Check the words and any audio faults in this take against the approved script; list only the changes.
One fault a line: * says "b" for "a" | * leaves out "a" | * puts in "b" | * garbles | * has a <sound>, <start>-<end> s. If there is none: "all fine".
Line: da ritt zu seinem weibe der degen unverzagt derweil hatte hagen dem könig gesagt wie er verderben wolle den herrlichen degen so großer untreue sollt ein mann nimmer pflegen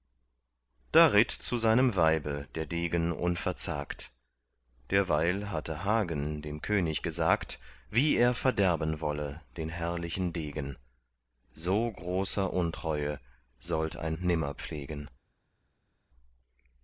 * leaves out "mann"